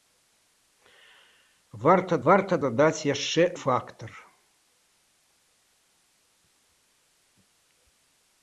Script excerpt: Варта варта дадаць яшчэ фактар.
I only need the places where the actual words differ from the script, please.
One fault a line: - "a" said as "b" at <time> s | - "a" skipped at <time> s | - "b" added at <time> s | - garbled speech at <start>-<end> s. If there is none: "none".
none